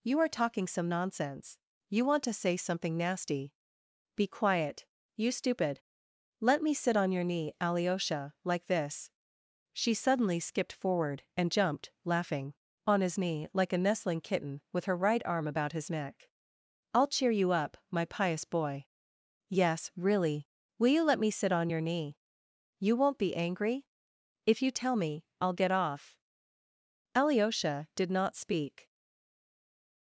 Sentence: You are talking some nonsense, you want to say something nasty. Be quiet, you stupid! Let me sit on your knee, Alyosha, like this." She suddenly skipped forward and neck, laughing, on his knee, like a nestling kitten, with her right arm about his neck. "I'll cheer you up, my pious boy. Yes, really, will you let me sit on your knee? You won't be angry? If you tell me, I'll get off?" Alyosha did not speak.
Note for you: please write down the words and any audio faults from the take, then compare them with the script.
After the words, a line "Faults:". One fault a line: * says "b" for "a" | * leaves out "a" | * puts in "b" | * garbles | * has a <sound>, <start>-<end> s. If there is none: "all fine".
You are talking some nonsense, you want to say something nasty. Be quiet, you stupid! Let me sit on your knee, Alyosha, like this." She suddenly skipped forward and jumped, laughing, on his knee, like a nestling kitten, with her right arm about his neck. "I'll cheer you up, my pious boy. Yes, really, will you let me sit on your knee? You won't be angry? If you tell me, I'll get off?" Alyosha did not speak.
Faults:
* says "jumped" for "neck"